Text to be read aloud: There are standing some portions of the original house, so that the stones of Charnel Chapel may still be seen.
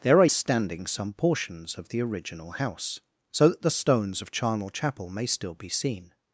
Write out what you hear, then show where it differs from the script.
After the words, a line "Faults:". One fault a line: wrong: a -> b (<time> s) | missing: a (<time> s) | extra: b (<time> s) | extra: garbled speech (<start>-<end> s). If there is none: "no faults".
There are standing some portions of the original house, so that the stones of Charnel Chapel may still be seen.
Faults:
no faults